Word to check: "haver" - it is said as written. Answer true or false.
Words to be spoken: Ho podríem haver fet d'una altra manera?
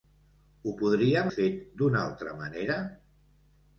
false